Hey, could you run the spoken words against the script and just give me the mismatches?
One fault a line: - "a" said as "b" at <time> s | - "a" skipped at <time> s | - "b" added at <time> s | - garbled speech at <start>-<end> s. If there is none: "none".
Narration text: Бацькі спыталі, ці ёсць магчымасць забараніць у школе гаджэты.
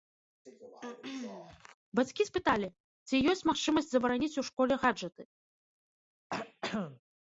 none